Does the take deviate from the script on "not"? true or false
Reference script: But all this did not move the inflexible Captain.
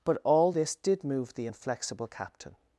true